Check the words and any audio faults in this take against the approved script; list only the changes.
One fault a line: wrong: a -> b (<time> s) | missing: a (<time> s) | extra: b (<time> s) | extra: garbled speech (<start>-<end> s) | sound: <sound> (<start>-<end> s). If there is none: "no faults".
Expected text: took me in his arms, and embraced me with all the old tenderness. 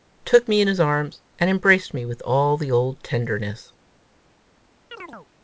sound: chirp (4.9-5.3 s)